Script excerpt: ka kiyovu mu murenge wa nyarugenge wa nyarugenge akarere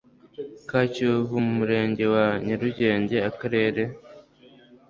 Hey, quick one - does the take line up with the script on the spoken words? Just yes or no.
no